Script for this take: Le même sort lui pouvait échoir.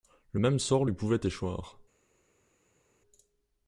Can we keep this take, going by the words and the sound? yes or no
yes